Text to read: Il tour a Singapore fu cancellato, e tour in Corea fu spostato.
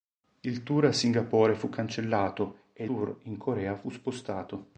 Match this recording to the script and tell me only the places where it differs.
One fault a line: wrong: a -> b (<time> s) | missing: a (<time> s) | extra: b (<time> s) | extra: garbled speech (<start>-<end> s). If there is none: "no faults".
no faults